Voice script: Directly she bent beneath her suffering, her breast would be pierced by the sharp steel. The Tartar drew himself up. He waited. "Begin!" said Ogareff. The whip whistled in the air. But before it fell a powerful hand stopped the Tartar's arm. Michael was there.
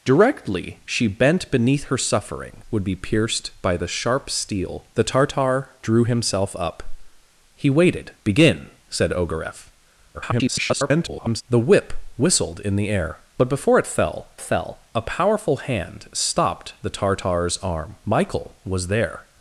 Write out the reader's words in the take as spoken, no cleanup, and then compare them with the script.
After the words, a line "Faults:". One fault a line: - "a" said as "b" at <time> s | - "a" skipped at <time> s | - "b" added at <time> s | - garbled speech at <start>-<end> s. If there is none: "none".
Directly she bent beneath her suffering, would be pierced by the sharp steel. The Tartar drew himself up. He waited. "Begin!" said Ogareff. [garbled] The whip whistled in the air. But before it fell fell a powerful hand stopped the Tartar's arm. Michael was there.
Faults:
- "her breast" skipped at 2.6 s
- garbled speech at 10.1-11.4 s
- "fell" added at 14.4 s